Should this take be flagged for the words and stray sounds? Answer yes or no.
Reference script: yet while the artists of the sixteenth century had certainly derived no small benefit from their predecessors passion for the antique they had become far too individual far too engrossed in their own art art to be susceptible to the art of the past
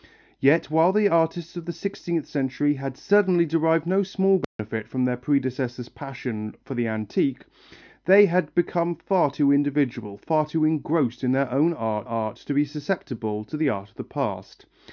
yes